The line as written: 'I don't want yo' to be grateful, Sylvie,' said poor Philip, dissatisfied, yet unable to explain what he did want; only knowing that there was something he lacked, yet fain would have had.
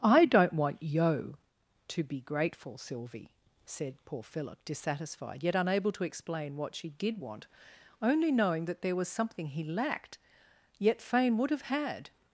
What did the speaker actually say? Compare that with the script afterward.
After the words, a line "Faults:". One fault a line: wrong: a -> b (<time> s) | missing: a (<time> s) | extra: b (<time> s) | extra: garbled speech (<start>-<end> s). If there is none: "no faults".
'I don't want yo' to be grateful, Sylvie,' said poor Philip, dissatisfied, yet unable to explain what she did want; only knowing that there was something he lacked, yet fain would have had.
Faults:
wrong: he -> she (6.7 s)